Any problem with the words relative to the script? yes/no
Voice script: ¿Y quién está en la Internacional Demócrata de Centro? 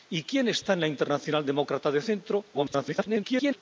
yes